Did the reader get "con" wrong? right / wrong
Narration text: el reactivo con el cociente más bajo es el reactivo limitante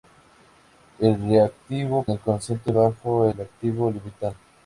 wrong